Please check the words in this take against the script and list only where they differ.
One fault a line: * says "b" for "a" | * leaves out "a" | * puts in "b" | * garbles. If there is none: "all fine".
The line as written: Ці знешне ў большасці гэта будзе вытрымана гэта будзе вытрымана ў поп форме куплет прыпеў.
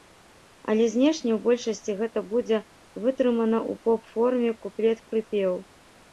* says "Але" for "Ці"
* leaves out "гэта будзе вытрымана"